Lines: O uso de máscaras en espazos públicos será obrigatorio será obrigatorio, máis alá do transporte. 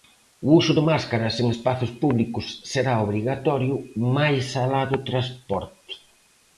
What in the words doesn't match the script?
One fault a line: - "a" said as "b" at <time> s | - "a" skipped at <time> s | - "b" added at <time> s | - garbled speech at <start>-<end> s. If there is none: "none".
- "será obrigatorio" skipped at 3.7 s